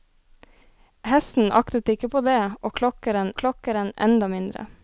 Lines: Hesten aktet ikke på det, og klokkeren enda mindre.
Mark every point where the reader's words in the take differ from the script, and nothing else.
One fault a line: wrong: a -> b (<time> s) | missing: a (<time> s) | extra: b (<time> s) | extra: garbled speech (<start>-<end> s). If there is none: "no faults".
extra: klokkeren (3.4 s)